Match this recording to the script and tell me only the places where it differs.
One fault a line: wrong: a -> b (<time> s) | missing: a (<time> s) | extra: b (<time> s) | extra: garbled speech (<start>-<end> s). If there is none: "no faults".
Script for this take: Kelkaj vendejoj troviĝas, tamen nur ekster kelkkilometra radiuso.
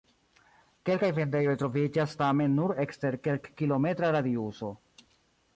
no faults